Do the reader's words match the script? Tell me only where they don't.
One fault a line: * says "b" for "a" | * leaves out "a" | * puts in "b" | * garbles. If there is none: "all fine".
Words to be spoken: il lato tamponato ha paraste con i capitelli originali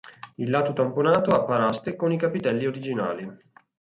all fine